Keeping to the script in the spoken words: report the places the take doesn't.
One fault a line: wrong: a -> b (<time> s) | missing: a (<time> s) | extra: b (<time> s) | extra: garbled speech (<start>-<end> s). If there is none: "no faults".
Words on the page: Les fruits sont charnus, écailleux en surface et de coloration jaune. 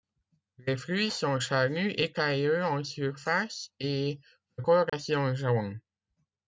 no faults